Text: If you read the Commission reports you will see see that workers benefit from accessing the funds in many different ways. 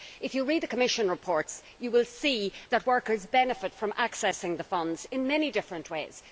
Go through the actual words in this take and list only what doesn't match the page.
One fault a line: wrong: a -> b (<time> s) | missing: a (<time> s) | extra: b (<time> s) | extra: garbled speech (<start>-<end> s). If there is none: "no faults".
missing: see (2.5 s)